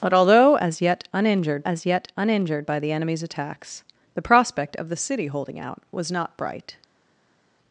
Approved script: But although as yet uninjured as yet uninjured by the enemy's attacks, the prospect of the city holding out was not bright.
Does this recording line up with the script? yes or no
yes